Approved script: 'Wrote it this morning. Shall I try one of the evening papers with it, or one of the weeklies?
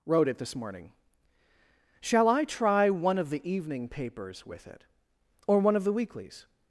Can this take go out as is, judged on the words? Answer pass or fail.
pass